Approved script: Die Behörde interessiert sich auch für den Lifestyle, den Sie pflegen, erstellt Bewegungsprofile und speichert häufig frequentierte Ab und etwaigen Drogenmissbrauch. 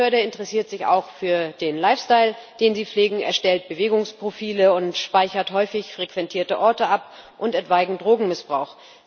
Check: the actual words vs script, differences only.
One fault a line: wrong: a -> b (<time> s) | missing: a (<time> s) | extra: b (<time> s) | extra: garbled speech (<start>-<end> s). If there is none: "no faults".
extra: Orte (6.6 s)